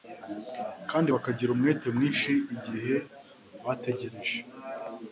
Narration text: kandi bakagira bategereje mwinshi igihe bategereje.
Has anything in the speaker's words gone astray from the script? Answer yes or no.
yes